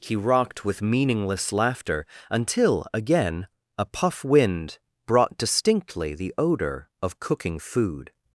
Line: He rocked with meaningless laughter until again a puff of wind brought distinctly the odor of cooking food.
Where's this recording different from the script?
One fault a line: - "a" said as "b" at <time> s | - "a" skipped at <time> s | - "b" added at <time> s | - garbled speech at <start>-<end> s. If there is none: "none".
- "of" skipped at 4.2 s